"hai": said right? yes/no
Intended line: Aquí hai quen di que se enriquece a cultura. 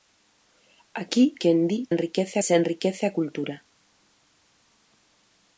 no